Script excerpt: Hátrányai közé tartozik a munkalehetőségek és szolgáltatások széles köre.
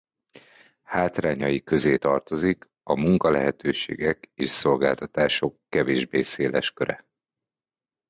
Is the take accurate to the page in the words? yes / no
no